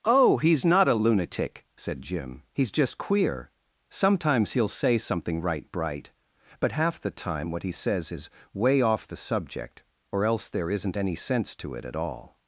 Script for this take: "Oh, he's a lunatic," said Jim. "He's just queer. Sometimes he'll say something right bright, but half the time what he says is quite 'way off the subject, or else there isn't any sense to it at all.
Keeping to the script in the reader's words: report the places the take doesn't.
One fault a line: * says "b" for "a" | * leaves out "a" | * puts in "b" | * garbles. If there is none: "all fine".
* puts in "not"
* leaves out "quite"